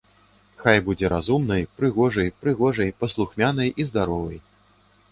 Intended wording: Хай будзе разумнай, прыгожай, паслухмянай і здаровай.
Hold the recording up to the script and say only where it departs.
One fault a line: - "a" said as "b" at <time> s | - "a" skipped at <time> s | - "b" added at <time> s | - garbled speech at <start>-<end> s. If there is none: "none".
- "прыгожай" added at 2.4 s